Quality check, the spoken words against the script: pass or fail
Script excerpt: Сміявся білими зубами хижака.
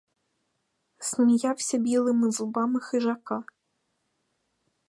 pass